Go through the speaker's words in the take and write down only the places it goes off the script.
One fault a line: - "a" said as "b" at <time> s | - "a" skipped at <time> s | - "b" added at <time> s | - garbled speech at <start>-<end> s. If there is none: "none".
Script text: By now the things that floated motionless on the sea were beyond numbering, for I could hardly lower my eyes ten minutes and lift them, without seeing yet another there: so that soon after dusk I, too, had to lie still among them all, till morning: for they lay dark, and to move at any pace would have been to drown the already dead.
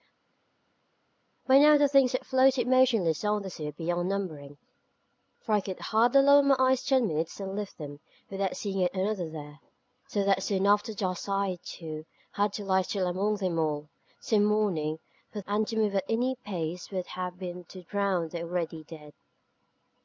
- "they lay dark" skipped at 15.4 s